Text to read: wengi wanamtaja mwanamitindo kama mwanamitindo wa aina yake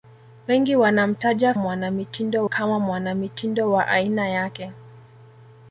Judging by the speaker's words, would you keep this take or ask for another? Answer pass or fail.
pass